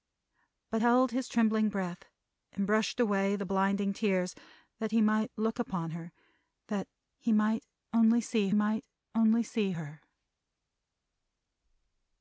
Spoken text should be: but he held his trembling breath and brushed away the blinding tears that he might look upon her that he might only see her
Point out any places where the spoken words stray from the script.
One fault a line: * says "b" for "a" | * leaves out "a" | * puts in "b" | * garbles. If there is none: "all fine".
* leaves out "he"
* puts in "might only see"